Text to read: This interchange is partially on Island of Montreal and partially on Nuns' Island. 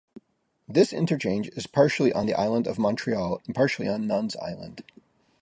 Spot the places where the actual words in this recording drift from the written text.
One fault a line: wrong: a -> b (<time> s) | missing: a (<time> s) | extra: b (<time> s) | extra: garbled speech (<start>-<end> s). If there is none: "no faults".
extra: the (2.2 s)